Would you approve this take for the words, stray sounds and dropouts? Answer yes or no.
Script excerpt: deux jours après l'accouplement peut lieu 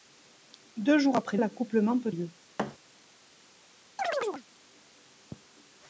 no